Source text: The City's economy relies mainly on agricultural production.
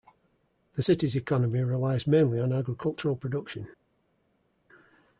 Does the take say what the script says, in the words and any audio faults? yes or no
yes